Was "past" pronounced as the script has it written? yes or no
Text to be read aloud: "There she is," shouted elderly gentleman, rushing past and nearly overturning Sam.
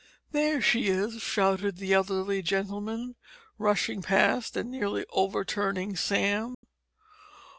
yes